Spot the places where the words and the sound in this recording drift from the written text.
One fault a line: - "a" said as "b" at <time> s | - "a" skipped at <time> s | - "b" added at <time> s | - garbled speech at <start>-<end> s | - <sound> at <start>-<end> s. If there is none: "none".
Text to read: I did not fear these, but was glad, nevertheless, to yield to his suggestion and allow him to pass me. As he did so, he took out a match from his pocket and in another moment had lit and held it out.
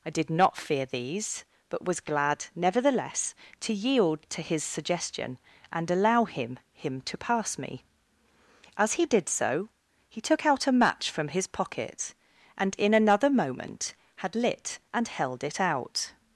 - "him" added at 6.7 s